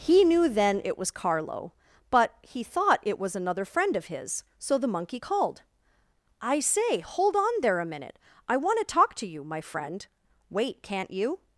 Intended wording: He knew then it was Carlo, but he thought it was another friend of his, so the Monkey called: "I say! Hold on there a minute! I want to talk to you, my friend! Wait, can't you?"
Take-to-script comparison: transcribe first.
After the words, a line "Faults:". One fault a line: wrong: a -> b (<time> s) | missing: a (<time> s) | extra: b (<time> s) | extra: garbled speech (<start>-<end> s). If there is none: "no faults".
He knew then it was Carlo, but he thought it was another friend of his, so the Monkey called: "I say! Hold on there a minute! I want to talk to you, my friend! Wait, can't you?"
Faults:
no faults